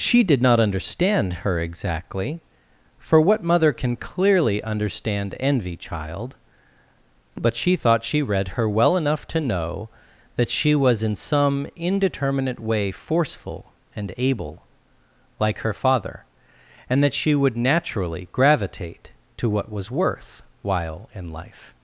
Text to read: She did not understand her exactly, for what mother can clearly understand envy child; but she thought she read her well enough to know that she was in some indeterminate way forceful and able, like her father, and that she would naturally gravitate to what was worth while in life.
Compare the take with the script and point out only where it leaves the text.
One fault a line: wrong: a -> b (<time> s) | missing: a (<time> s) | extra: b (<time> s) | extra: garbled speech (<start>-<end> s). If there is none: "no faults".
no faults